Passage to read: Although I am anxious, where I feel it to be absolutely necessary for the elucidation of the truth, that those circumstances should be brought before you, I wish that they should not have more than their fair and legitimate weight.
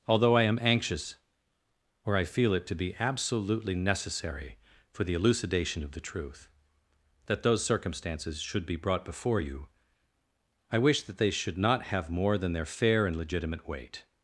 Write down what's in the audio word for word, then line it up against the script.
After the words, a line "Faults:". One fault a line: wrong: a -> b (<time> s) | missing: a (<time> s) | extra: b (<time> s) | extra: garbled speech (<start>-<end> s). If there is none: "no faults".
Although I am anxious, or I feel it to be absolutely necessary for the elucidation of the truth, that those circumstances should be brought before you, I wish that they should not have more than their fair and legitimate weight.
Faults:
wrong: where -> or (2.0 s)